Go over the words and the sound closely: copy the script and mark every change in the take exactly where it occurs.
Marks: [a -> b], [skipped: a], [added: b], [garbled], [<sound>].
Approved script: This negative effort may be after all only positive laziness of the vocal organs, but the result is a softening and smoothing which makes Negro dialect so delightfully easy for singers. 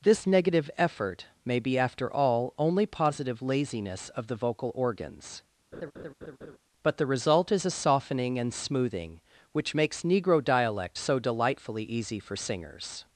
This negative effort may be after all only positive laziness of the vocal organs, [laugh] but the result is a softening and smoothing which makes Negro dialect so delightfully easy for singers.